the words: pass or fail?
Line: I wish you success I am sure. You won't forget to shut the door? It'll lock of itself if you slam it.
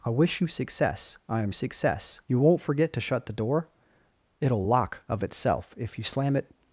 fail